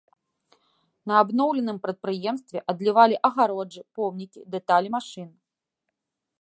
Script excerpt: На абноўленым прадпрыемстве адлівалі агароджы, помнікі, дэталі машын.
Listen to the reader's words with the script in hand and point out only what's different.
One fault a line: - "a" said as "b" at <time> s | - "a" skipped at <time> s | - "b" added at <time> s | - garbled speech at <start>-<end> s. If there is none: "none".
none